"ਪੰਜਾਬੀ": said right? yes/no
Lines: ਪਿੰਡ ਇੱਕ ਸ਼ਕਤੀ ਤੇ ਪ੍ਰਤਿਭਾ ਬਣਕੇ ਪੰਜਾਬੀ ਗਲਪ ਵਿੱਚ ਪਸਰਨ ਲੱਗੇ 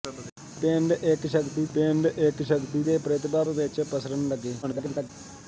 no